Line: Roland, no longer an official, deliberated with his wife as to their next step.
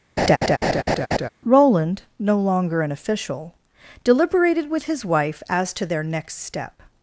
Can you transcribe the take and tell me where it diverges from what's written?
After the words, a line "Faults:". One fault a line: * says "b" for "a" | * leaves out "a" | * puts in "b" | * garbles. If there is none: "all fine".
Roland, no longer an official, deliberated with his wife as to their next step.
Faults:
all fine